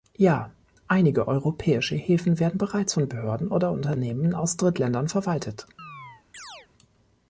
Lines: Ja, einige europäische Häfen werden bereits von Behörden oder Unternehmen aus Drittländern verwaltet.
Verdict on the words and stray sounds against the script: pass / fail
fail